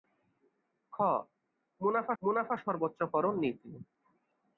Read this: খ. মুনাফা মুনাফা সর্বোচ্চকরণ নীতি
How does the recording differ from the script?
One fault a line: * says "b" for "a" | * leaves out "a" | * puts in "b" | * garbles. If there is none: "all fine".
all fine